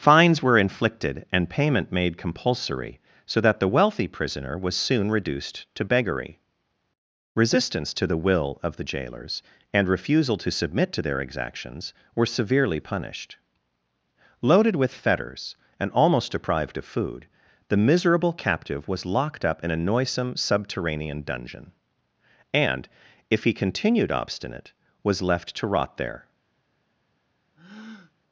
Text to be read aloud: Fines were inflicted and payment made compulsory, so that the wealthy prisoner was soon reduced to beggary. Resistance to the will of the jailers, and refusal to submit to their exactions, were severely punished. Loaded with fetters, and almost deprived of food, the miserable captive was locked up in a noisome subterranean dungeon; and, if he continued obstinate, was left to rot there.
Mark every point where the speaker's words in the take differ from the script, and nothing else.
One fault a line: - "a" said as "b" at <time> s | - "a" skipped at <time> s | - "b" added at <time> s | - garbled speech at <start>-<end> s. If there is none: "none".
none